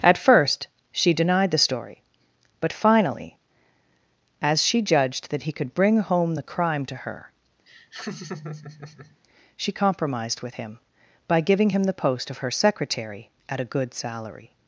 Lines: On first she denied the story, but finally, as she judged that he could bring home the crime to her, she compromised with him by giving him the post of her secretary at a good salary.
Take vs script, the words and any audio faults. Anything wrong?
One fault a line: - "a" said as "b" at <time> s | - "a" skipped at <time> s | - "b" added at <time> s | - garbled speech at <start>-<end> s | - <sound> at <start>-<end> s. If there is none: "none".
- "On" said as "At" at 0.0 s
- laugh at 7.7-9.2 s